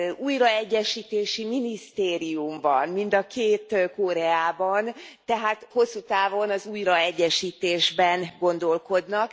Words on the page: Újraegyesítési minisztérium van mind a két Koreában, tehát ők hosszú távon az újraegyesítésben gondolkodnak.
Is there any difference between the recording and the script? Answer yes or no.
yes